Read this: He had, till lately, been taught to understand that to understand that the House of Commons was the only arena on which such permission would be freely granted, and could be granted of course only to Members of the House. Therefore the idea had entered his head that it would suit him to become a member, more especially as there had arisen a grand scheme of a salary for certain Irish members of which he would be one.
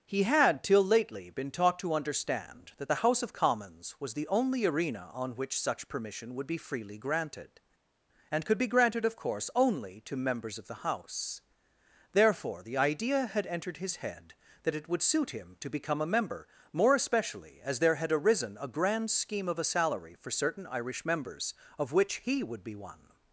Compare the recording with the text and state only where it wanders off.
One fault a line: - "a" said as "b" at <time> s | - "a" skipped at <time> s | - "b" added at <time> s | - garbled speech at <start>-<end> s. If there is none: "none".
- "to understand that" skipped at 2.9 s